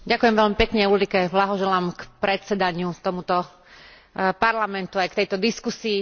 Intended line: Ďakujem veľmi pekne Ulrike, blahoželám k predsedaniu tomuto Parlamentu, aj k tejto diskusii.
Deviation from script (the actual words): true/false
false